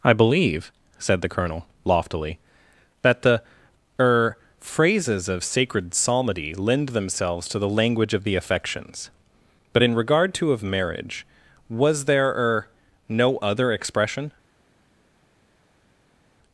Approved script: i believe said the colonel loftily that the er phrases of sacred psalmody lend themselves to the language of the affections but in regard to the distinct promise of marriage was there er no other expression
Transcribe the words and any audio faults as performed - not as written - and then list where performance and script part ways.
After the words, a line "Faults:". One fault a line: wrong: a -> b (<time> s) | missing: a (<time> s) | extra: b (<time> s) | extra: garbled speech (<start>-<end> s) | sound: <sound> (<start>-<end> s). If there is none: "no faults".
i believe said the colonel loftily that the er phrases of sacred psalmody lend themselves to the language of the affections but in regard to of marriage was there er no other expression
Faults:
missing: the distinct promise (10.5 s)